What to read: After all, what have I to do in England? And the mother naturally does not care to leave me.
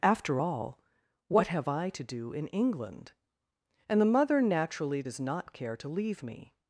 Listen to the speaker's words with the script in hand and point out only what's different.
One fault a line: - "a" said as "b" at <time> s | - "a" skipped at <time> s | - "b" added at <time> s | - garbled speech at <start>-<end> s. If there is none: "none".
none